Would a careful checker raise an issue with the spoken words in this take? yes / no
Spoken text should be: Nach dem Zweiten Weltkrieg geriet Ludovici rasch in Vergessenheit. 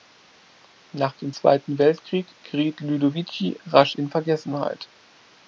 no